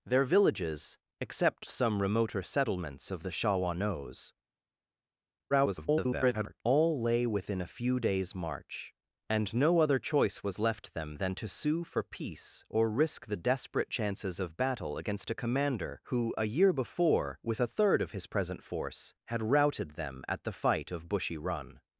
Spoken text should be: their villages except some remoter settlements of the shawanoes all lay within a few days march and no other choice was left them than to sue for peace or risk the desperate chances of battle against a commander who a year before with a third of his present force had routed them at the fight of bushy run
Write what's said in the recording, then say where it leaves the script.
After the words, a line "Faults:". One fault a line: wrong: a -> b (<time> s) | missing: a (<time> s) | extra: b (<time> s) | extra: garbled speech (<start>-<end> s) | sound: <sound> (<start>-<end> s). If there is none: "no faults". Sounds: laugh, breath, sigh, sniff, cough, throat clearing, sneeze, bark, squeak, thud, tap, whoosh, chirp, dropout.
their villages except some remoter settlements of the shawanoes [garbled] all lay within a few days march and no other choice was left them than to sue for peace or risk the desperate chances of battle against a commander who a year before with a third of his present force had routed them at the fight of bushy run
Faults:
extra: garbled speech (5.5-6.6 s)